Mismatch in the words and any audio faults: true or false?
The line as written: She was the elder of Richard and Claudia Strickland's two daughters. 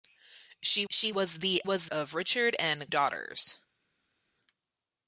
true